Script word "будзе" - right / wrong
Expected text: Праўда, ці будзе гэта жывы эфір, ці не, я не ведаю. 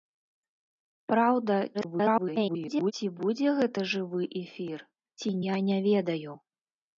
right